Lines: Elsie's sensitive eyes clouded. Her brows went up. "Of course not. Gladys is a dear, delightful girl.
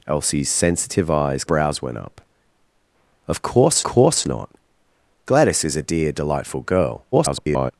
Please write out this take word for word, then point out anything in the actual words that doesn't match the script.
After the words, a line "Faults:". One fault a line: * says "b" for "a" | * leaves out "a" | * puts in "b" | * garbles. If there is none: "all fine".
Elsie's sensitive eyes brows went up. "Of course course not. Gladys is a dear, delightful girl. [garbled]
Faults:
* leaves out "clouded Her"
* puts in "course"
* garbles